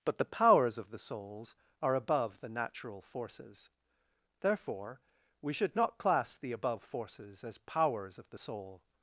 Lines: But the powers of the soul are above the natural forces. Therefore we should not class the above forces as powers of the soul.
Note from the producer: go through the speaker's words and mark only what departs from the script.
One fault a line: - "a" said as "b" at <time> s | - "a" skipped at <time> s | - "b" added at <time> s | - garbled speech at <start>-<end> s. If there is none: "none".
- "soul" said as "souls" at 1.0 s